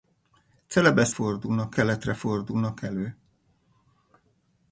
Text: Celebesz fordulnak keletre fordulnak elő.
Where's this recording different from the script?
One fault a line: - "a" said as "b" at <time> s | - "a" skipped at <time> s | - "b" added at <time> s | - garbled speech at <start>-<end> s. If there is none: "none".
none